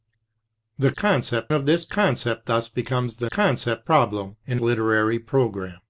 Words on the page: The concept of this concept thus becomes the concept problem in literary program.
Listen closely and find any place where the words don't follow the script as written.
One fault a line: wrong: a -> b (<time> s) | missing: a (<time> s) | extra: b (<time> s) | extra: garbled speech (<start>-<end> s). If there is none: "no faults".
no faults